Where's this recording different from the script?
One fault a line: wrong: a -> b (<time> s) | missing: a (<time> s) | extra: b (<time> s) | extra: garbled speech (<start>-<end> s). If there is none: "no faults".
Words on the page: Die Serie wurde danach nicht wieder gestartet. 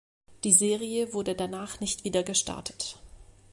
no faults